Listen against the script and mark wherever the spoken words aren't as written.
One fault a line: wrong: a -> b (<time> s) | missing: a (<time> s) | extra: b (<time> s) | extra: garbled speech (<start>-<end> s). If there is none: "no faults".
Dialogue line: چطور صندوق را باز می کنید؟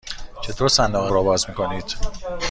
no faults